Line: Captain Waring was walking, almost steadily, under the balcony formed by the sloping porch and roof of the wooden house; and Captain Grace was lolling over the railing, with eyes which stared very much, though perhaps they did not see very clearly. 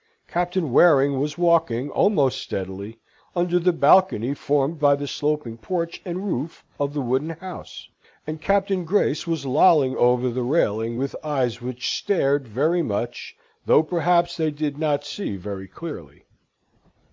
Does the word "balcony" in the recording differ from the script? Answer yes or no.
no